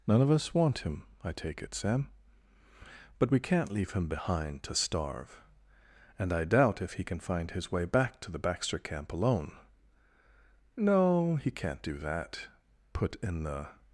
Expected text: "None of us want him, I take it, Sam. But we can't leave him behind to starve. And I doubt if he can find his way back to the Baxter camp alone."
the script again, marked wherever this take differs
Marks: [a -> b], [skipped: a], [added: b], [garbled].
"None of us want him, I take it, Sam. But we can't leave him behind to starve. And I doubt if he can find his way back to the Baxter camp alone." [added: No he can't do that put in the]